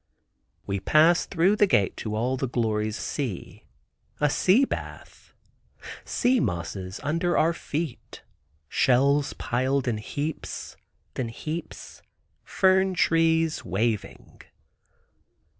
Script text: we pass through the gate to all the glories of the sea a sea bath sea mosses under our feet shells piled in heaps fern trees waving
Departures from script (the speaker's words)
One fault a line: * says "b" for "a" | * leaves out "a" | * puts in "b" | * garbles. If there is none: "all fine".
* leaves out "of the"
* puts in "in heaps"